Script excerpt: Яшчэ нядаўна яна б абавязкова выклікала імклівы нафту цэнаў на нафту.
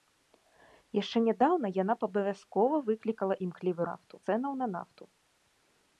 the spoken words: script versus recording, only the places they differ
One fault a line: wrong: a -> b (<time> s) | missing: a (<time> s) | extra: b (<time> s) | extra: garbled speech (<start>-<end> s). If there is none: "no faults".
no faults